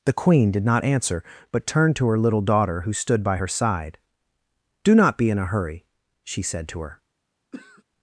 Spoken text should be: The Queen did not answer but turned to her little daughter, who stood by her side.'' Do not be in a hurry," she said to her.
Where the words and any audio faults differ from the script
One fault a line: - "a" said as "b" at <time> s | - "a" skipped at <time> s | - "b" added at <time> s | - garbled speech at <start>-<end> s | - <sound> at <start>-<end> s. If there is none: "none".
- throat clearing at 7.5-7.8 s